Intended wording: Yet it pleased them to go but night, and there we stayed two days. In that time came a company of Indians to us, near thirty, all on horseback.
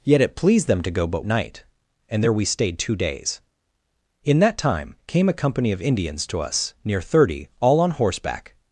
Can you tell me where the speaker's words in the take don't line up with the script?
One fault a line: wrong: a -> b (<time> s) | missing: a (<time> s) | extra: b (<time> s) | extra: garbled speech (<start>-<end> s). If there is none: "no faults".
no faults